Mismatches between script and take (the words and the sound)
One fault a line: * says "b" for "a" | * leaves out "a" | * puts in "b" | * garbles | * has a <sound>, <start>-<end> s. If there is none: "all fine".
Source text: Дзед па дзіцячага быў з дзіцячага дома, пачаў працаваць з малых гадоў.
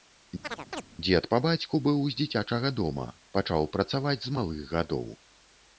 * has a chirp, 0.4-0.8 s
* says "бацьку" for "дзіцячага"